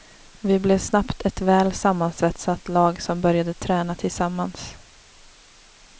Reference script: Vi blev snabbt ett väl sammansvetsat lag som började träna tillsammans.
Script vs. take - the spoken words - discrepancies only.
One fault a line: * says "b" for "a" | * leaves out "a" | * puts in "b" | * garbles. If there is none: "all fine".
all fine